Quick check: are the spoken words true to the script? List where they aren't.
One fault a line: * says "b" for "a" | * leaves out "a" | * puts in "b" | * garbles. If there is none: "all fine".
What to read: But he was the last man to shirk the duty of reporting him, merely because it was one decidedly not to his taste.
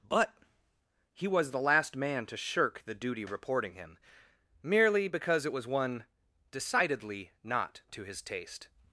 * leaves out "of"